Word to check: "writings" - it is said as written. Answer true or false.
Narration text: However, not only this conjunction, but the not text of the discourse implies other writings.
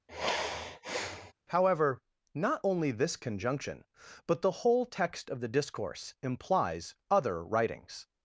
true